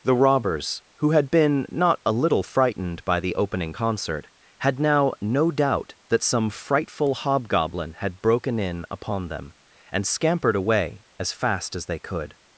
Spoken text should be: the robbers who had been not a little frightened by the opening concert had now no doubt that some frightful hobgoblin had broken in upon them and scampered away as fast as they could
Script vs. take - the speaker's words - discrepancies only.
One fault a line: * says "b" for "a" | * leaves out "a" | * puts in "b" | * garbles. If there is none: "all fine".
all fine